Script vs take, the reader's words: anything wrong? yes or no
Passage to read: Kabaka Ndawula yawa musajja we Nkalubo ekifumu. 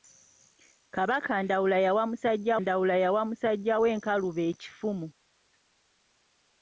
yes